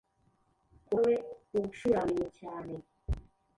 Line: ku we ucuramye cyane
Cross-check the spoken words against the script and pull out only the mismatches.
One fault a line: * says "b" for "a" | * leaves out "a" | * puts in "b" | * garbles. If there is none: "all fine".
all fine